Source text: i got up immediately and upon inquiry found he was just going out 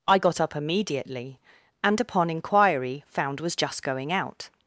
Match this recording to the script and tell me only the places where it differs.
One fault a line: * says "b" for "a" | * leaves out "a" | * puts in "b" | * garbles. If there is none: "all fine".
* leaves out "he"